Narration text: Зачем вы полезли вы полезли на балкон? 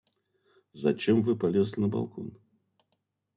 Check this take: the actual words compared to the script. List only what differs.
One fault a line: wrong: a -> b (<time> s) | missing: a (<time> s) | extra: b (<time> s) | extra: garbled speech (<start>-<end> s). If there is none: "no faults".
missing: вы полезли (1.8 s)